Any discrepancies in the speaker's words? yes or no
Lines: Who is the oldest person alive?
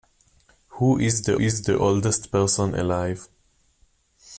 yes